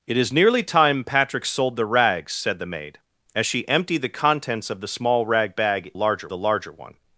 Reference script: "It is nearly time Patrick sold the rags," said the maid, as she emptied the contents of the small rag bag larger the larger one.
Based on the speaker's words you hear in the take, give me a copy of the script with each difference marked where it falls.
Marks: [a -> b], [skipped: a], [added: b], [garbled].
"It is nearly time Patrick sold the rags," said the maid, as she emptied the contents of the small rag bag larger the larger one.